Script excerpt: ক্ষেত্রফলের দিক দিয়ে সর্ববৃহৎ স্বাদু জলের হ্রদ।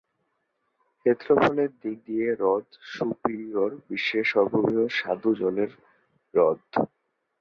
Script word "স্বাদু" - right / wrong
right